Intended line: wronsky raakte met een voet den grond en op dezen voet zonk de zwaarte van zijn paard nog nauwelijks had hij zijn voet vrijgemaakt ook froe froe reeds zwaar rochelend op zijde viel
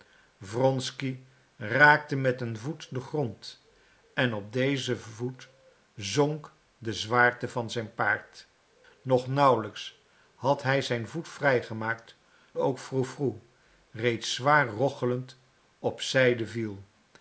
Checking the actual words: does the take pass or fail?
pass